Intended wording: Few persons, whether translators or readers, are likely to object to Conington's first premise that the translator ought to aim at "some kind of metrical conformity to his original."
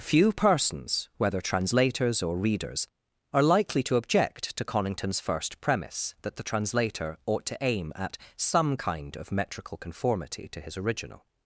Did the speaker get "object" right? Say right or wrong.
right